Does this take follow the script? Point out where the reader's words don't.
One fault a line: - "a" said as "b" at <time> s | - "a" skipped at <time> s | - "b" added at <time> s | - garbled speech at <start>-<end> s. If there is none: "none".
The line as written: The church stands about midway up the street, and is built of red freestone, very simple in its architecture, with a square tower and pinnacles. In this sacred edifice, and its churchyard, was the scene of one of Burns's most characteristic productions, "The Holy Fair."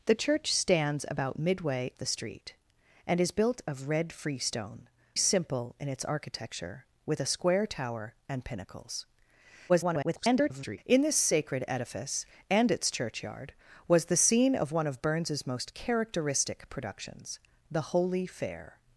- "up" skipped at 1.9 s
- "very" skipped at 4.9 s
- garbled speech at 9.7-10.8 s